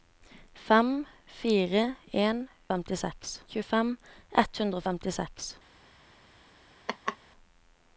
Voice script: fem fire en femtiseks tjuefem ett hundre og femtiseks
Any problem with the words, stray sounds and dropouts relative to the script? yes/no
yes